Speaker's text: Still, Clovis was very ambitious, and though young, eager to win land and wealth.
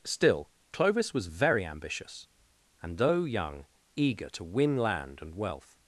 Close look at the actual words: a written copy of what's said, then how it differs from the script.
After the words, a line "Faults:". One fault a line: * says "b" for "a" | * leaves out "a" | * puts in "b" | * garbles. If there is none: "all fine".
Still, Clovis was very ambitious, and though young, eager to win land and wealth.
Faults:
all fine